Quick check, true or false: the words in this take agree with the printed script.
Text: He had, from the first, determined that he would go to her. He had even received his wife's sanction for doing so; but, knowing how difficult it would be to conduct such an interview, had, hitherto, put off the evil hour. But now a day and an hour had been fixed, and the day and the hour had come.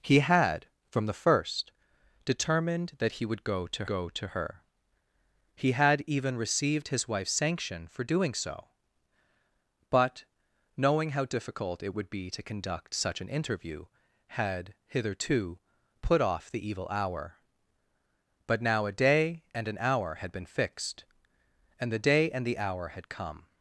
false